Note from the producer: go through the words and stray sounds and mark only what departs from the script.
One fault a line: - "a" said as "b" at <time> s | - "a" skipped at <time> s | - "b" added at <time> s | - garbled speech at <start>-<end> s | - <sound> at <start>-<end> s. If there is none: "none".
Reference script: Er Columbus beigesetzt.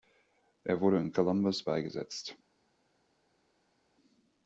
- "wurde in" added at 0.8 s